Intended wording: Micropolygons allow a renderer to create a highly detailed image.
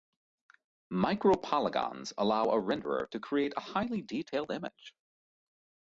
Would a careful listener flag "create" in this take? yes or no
no